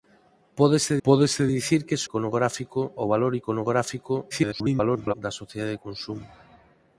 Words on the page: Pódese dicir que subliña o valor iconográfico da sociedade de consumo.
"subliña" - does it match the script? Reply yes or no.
no